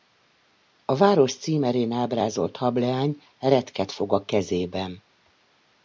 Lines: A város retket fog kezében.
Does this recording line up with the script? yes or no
no